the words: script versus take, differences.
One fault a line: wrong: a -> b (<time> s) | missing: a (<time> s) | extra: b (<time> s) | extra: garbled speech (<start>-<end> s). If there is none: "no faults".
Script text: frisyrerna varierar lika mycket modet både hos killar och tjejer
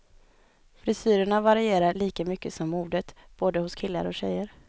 extra: som (2.5 s)